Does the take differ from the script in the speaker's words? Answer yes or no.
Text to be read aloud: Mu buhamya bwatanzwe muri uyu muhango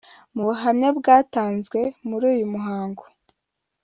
no